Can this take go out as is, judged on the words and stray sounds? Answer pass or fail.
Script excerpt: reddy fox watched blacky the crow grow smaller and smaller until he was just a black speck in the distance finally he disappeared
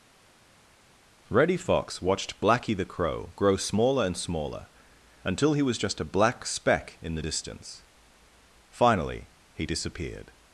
pass